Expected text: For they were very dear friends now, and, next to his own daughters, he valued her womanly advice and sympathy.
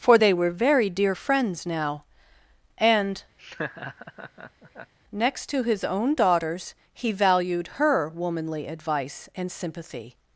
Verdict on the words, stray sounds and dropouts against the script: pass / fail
fail